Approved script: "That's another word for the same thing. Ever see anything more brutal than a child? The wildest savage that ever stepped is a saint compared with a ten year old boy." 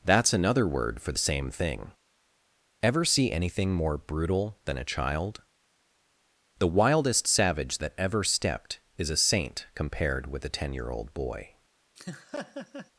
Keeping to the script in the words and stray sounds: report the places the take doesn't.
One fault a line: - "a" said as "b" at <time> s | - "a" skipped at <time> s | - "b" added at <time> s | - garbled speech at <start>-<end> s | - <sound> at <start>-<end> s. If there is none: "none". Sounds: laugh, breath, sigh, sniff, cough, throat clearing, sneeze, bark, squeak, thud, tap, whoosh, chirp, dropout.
- laugh at 12.0-12.9 s